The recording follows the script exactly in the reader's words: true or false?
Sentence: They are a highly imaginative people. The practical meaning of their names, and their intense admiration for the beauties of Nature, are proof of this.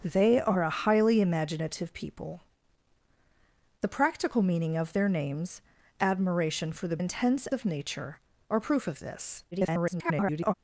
false